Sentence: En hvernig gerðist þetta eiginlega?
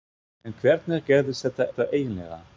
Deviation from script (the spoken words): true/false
true